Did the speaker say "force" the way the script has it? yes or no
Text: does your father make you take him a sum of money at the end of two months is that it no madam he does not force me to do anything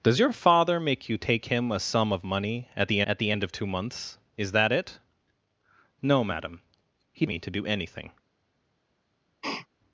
no